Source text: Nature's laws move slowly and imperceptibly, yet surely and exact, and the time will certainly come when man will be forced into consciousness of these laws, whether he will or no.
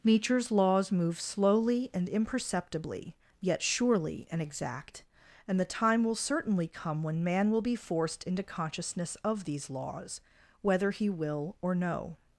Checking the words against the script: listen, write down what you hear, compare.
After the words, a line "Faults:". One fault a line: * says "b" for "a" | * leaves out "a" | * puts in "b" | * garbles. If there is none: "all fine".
Nature's laws move slowly and imperceptibly, yet surely and exact, and the time will certainly come when man will be forced into consciousness of these laws, whether he will or no.
Faults:
all fine